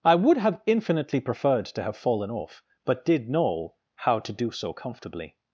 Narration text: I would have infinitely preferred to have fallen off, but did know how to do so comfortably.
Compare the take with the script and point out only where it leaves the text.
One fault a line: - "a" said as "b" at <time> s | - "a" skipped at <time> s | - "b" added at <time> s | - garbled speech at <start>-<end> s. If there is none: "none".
none